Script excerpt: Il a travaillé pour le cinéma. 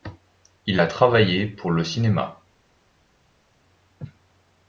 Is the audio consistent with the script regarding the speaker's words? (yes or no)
yes